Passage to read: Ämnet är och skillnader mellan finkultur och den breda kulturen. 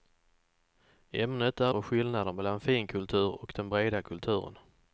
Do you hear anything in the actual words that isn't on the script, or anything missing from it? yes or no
no